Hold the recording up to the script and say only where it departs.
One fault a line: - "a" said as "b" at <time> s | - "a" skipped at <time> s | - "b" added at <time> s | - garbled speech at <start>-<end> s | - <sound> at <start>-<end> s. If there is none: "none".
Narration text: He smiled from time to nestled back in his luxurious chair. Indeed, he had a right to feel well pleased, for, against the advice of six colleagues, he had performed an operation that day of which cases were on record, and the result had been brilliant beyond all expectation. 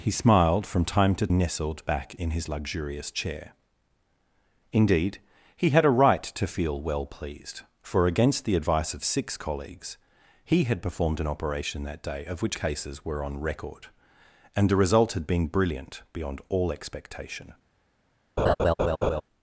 - laugh at 18.4-19.2 s